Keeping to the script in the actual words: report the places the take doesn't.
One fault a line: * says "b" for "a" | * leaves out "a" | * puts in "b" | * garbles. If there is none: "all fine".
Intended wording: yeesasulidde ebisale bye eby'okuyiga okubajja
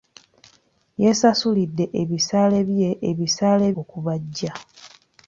* says "ebisale" for "eby'okuyiga"